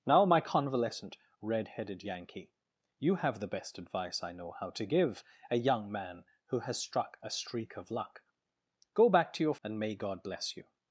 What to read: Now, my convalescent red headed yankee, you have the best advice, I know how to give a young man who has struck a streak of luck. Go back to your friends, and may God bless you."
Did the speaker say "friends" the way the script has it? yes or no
no